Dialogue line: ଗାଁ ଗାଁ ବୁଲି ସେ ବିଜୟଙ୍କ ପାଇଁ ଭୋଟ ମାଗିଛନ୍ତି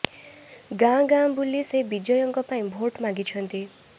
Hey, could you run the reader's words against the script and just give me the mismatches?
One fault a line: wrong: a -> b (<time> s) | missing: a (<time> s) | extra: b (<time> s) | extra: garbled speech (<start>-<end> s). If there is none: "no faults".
no faults